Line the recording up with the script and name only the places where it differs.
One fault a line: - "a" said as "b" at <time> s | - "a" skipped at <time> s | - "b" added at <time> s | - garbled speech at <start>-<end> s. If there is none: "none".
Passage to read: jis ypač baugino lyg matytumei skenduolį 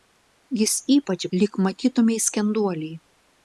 - "baugino" skipped at 1.2 s